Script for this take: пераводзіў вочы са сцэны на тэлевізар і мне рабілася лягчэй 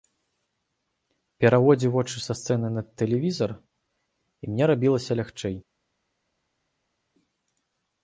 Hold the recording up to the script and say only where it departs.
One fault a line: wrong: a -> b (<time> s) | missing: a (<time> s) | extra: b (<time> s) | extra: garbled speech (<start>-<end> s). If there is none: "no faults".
no faults